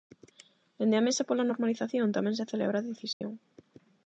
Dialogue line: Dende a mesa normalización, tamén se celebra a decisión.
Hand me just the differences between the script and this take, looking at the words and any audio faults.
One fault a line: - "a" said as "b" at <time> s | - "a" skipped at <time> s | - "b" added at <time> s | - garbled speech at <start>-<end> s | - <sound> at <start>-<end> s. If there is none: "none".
- "pola" added at 1.3 s
- dropout at 3.1-3.2 s